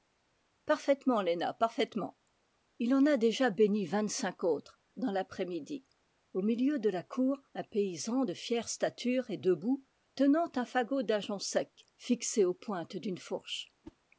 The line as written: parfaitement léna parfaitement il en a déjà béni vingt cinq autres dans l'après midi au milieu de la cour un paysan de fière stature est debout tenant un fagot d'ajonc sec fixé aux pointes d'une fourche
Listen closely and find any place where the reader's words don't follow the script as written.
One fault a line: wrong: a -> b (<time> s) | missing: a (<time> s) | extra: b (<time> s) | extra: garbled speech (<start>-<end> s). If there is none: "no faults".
no faults